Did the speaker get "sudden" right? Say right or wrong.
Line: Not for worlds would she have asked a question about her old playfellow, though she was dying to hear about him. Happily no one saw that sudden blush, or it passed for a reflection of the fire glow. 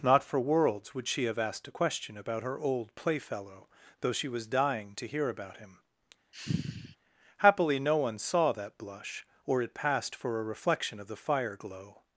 wrong